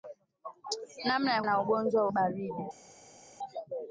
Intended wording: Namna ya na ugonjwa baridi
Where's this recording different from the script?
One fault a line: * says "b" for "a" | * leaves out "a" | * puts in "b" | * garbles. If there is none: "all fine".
all fine